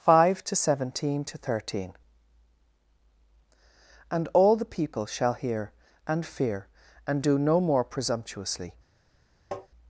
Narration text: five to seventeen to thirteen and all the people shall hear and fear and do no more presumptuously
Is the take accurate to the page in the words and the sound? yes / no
no